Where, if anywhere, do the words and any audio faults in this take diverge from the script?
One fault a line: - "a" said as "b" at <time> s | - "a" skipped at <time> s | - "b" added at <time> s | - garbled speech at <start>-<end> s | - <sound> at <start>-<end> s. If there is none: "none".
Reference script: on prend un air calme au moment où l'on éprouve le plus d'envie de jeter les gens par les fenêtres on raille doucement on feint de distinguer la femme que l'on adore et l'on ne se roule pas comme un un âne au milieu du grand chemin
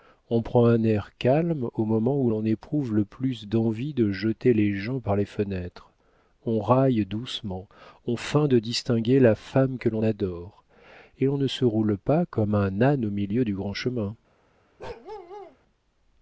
- "un" skipped at 12.8 s
- bark at 14.8-15.6 s